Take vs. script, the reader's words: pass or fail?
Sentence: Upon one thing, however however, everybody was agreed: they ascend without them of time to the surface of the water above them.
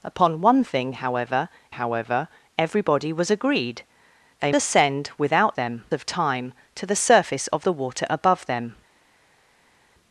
pass